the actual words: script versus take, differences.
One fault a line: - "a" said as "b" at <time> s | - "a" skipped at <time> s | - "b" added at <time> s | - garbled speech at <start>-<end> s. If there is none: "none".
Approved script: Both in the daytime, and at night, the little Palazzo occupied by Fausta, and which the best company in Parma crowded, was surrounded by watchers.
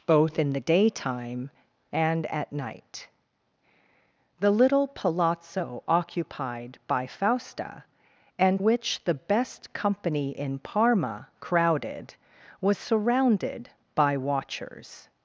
none